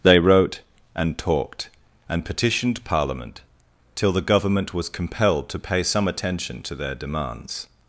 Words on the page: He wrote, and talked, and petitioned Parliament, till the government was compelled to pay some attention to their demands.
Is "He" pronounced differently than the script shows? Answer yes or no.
yes